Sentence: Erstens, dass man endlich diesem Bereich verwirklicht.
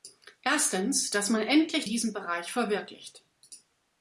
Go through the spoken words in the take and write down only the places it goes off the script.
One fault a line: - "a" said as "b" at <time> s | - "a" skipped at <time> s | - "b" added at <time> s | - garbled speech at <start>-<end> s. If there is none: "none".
none